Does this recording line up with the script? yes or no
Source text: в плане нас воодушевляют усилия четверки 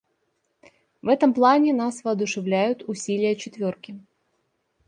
no